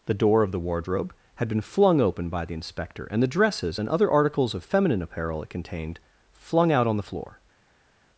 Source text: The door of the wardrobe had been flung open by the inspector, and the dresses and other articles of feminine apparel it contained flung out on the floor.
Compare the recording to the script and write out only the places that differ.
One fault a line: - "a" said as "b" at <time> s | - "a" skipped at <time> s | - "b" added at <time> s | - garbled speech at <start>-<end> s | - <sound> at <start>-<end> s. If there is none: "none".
none